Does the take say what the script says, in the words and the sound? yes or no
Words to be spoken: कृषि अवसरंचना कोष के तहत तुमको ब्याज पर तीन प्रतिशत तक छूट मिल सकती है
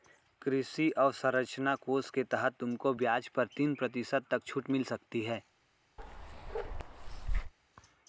no